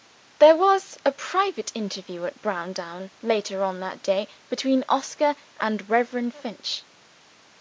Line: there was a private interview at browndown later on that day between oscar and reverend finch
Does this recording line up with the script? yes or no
yes